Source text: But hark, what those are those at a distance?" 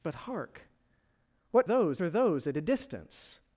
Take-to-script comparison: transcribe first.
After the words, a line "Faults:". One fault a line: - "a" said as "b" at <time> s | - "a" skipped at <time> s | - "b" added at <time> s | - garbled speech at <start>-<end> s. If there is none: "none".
But hark, what those are those at a distance?"
Faults:
none